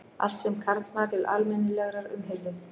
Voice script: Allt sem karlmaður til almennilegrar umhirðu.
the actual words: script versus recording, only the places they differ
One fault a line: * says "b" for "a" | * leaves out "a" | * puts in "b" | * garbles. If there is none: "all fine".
all fine